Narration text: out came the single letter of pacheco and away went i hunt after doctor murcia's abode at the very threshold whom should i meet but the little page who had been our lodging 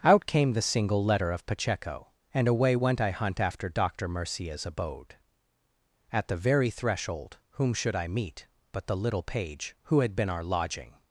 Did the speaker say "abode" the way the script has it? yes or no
yes